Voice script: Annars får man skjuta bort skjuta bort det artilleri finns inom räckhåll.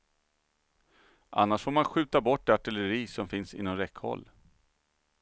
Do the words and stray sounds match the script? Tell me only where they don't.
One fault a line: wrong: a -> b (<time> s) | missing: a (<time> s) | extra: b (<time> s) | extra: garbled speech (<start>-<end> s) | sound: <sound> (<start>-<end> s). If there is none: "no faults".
missing: skjuta bort (2.5 s)
extra: som (3.1 s)